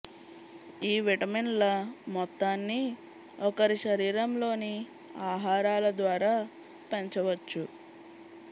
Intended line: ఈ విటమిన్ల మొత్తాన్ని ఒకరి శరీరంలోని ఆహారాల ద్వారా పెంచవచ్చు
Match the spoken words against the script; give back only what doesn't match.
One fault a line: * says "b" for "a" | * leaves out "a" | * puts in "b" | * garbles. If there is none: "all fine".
all fine